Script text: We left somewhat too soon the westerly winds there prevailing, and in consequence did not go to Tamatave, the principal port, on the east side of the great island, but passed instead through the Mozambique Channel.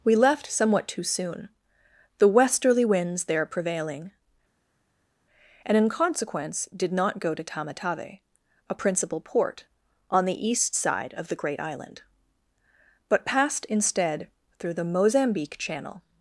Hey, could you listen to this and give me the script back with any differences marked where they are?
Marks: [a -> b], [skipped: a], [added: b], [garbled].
We left somewhat too soon the westerly winds there prevailing, and in consequence did not go to Tamatave, [the -> a] principal port, on the east side of the great island, but passed instead through the Mozambique Channel.